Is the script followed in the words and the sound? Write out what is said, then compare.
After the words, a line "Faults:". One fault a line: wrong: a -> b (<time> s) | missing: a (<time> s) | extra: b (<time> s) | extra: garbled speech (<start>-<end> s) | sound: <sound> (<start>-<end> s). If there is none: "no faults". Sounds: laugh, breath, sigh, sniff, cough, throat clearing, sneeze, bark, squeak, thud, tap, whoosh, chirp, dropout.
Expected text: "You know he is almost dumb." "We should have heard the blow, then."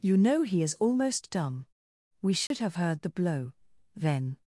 "You know he is almost dumb." "We should have heard the blow, then."
Faults:
sound: dropout (2.5-2.5 s)